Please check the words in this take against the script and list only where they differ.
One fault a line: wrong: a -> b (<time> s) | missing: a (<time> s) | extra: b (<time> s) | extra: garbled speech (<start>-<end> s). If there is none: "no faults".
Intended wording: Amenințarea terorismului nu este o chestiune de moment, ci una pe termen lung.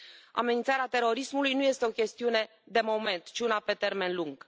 no faults